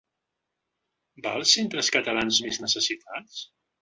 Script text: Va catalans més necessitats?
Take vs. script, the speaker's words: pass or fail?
fail